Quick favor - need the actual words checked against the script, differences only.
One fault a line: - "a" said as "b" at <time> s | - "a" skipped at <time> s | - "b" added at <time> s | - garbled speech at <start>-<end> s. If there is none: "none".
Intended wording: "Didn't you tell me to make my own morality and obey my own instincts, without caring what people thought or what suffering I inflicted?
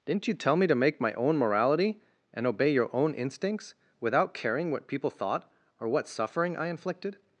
- "my" said as "your" at 2.7 s